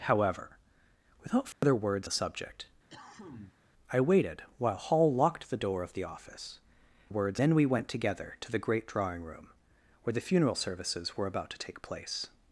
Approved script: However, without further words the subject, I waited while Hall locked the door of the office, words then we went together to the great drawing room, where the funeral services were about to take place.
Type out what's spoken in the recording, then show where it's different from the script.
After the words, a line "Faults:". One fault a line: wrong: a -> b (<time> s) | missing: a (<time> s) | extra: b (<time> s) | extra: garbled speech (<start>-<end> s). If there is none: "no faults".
However, without further words the subject, I waited while Hall locked the door of the office, words then we went together to the great drawing room, where the funeral services were about to take place.
Faults:
no faults